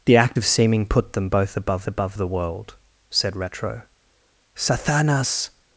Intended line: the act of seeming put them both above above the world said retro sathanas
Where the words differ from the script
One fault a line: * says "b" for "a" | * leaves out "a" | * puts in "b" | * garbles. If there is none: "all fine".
all fine